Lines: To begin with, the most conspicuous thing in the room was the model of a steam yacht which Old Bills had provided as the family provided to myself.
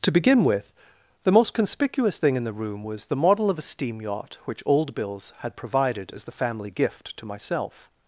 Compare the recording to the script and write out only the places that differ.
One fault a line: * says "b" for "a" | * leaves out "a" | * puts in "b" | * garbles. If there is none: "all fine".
* says "gift" for "provided"